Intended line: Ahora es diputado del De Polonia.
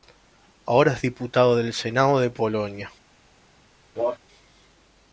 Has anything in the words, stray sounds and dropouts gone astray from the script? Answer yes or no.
yes